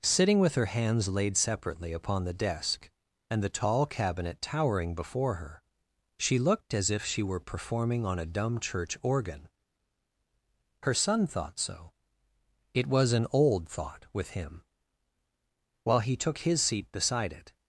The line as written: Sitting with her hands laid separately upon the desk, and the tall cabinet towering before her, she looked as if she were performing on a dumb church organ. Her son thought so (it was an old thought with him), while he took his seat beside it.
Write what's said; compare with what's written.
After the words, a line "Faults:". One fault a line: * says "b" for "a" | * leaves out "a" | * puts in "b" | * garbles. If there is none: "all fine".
Sitting with her hands laid separately upon the desk, and the tall cabinet towering before her, she looked as if she were performing on a dumb church organ. Her son thought so (it was an old thought with him), while he took his seat beside it.
Faults:
all fine